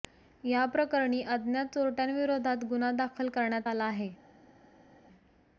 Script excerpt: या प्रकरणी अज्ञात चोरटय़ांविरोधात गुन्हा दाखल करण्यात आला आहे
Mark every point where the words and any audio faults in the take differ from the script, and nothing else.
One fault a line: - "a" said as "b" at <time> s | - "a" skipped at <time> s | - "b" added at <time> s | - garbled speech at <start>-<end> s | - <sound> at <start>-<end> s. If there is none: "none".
none